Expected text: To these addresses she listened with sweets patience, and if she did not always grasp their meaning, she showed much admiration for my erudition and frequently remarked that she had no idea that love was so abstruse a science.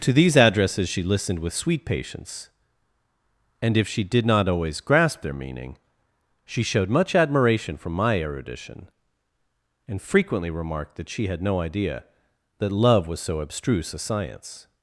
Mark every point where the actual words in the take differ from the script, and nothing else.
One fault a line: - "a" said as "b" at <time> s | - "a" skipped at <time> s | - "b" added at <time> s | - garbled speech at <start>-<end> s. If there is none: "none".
- "sweets" said as "sweet" at 1.5 s